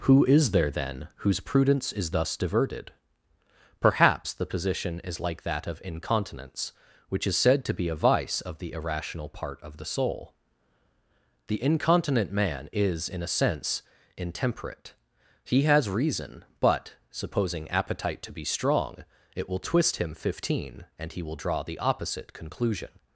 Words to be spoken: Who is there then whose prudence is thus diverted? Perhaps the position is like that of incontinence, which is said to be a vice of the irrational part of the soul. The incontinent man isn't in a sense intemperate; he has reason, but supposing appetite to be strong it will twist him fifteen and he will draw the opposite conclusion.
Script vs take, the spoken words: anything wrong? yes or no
yes